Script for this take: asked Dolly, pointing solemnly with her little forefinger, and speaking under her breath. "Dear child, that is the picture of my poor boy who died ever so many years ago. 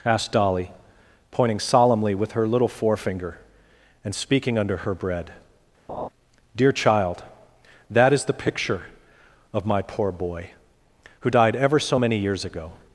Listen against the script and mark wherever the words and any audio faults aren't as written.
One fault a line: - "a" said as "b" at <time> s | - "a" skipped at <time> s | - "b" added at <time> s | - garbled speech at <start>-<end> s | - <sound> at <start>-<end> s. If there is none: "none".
- "breath" said as "bread" at 5.0 s
- laugh at 5.9-6.1 s